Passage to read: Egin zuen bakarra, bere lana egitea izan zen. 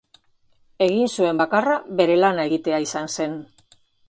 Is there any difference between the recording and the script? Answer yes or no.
no